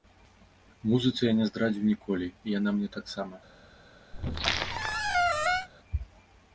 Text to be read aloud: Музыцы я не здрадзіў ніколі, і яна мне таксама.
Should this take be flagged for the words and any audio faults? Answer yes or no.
yes